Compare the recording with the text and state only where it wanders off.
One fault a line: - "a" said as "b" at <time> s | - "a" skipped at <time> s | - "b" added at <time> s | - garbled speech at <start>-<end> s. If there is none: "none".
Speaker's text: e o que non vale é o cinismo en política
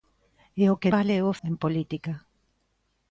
- "non" skipped at 0.9 s
- "cinismo" skipped at 1.4 s